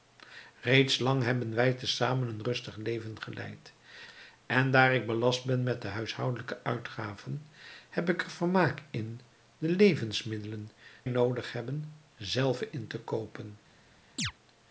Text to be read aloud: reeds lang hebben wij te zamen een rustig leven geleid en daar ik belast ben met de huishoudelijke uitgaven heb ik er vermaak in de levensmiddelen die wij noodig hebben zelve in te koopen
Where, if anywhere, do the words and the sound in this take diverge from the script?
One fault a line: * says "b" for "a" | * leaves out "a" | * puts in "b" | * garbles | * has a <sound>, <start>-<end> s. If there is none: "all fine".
* leaves out "die wij"
* has a chirp, 14.2-14.3 s